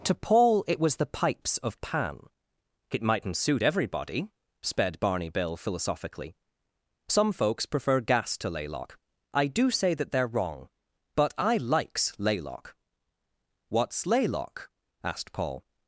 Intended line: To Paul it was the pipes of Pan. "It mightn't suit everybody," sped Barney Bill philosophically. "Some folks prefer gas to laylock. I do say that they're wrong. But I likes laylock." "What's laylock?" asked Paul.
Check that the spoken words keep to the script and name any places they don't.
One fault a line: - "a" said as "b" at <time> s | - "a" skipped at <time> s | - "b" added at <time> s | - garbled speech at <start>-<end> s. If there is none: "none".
none